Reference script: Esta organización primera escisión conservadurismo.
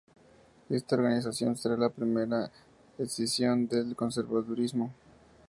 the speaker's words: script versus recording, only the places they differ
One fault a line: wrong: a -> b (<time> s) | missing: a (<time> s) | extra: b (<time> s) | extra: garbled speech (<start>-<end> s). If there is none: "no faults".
extra: será la (1.6 s)
extra: del (3.7 s)